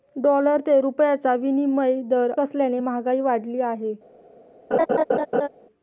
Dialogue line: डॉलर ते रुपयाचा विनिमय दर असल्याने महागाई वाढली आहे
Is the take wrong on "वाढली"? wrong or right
right